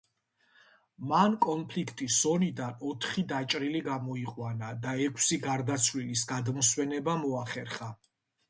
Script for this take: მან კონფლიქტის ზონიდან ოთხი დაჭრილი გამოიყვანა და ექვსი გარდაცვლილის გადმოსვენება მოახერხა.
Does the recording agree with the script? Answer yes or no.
yes